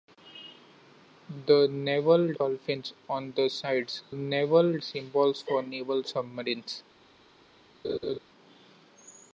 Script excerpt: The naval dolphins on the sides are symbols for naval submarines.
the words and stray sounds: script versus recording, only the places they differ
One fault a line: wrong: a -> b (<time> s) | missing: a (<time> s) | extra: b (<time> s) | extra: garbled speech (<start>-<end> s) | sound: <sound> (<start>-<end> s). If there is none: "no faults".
wrong: are -> naval (4.1 s)
sound: laugh (7.8-8.2 s)